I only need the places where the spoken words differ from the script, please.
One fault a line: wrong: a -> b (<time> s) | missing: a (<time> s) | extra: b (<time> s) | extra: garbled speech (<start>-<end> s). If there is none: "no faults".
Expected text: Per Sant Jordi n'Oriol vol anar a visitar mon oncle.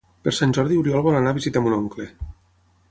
no faults